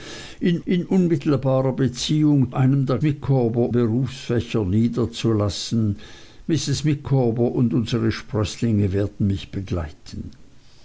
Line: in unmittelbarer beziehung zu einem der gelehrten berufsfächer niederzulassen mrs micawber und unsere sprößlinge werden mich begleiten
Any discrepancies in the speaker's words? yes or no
yes